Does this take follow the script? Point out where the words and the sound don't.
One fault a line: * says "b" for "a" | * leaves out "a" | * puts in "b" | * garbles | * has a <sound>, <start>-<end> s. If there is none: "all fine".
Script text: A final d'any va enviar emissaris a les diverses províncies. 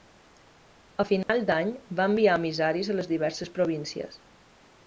* has a dropout, 1.2-1.3 s